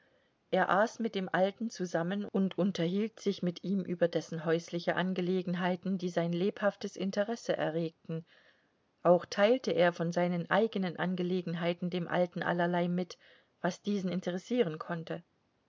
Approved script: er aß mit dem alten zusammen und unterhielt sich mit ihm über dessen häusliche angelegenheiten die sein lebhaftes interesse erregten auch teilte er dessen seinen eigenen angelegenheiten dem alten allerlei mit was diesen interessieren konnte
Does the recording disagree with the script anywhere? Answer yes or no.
yes